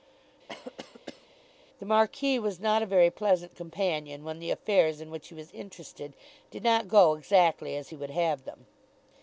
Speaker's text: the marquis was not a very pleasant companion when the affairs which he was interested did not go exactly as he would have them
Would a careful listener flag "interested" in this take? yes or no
no